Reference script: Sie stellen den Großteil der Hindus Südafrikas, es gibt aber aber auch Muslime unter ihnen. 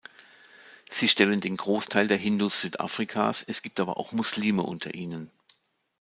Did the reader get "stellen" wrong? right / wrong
right